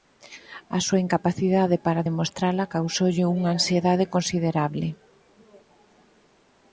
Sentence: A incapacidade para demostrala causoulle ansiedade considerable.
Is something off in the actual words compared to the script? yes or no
yes